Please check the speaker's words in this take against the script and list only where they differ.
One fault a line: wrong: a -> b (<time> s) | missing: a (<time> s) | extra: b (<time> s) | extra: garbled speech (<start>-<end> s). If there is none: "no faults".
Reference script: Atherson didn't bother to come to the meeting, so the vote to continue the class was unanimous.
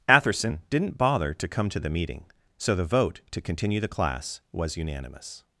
no faults